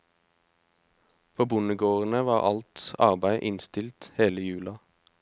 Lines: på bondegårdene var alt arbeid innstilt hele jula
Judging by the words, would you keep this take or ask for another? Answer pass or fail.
pass